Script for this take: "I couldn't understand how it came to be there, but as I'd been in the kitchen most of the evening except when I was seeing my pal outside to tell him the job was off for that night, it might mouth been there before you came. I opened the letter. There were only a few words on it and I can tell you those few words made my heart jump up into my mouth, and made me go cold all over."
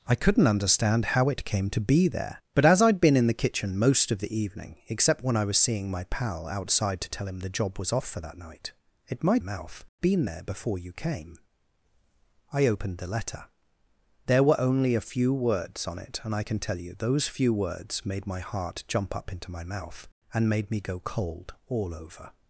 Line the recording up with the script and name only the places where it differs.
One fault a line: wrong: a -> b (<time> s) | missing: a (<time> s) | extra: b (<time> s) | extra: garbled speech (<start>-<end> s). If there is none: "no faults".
no faults